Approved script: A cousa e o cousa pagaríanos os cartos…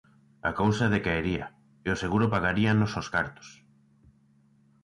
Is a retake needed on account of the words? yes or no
yes